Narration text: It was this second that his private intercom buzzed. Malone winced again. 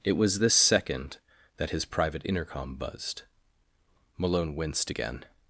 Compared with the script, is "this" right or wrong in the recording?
right